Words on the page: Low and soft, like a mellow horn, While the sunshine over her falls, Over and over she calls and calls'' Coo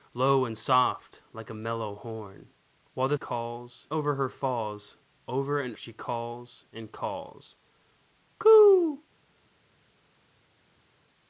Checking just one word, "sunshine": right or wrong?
wrong